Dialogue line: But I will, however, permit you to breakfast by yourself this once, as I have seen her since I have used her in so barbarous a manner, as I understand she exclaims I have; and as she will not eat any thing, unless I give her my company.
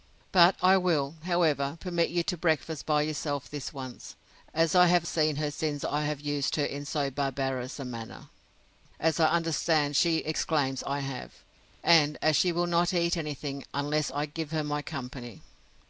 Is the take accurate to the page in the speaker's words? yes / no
yes